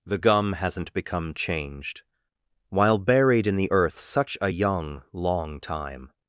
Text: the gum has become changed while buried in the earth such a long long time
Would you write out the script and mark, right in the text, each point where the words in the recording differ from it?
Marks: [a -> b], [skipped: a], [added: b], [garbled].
the gum [has -> hasn't] become changed while buried in the earth such a [long -> young] long time